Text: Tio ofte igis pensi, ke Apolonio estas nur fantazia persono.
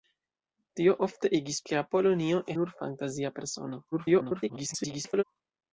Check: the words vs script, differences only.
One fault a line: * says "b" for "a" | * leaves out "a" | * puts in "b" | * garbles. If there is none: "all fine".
* leaves out "pensi"
* leaves out "estas"
* garbles